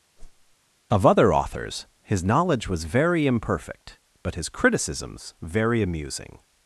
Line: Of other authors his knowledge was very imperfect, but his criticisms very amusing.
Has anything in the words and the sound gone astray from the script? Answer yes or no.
yes